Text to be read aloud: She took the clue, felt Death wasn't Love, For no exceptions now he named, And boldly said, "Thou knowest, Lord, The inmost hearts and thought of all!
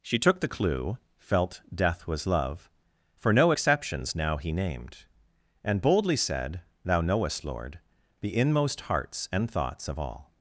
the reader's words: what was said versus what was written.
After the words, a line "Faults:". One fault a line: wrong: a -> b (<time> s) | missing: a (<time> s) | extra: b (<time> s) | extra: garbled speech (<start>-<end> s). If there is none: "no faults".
She took the clue, felt Death was Love, For no exceptions now he named, And boldly said, "Thou knowest, Lord, The inmost hearts and thoughts of all!
Faults:
wrong: wasn't -> was (2.1 s)
wrong: thought -> thoughts (9.5 s)